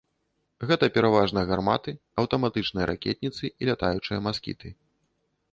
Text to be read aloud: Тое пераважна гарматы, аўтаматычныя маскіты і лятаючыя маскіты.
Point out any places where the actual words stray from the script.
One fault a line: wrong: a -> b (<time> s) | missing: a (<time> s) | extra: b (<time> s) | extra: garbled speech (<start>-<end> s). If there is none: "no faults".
wrong: Тое -> Гэта (0.7 s)
wrong: маскіты -> ракетніцы (2.9 s)